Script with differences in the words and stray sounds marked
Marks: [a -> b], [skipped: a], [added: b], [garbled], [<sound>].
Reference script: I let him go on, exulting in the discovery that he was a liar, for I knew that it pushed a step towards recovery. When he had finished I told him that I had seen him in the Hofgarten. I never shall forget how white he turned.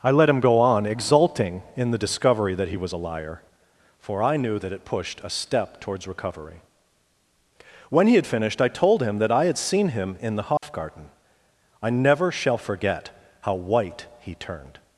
I let him go on, exulting in the discovery that he was a liar, for I knew that it pushed a step towards recovery. When he had finished I told him that I had seen him in the Hofgarten. [dropout] I never shall forget how white he turned.